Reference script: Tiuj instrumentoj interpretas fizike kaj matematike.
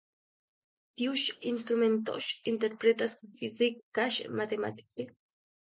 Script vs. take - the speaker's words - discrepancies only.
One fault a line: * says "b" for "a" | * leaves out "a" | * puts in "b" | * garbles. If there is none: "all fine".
all fine